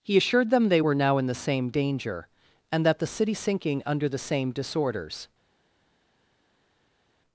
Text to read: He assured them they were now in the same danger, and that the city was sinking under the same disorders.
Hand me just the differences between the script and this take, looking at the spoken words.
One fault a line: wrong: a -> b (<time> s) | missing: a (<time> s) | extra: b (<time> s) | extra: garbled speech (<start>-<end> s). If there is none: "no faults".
missing: was (3.3 s)